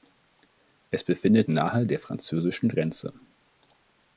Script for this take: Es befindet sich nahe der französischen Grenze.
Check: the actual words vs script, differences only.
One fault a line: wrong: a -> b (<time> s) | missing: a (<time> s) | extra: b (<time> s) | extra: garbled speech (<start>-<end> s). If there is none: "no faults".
missing: sich (1.5 s)